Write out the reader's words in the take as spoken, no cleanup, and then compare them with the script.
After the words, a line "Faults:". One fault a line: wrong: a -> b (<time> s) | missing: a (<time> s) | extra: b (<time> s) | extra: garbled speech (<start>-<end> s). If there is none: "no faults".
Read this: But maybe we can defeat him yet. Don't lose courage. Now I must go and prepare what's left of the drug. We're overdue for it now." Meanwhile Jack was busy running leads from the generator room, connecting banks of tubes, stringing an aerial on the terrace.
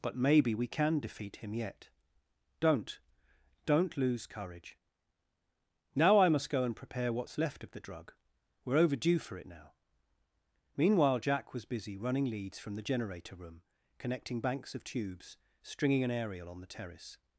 But maybe we can defeat him yet. Don't Don't lose courage. Now I must go and prepare what's left of the drug. We're overdue for it now." Meanwhile Jack was busy running leads from the generator room, connecting banks of tubes, stringing an aerial on the terrace.
Faults:
extra: Don't (3.6 s)